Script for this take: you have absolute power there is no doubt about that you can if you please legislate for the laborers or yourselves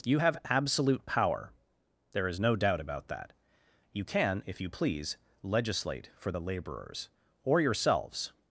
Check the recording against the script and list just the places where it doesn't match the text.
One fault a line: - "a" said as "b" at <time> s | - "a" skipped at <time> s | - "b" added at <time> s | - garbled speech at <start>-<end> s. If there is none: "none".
none